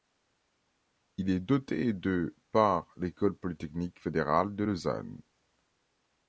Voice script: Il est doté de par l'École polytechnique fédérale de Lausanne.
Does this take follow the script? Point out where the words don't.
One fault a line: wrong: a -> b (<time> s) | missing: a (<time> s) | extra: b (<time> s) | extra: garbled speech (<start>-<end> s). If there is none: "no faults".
no faults